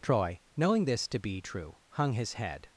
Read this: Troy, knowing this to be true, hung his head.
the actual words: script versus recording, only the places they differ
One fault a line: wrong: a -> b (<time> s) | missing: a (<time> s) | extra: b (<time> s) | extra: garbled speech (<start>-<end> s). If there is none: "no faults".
no faults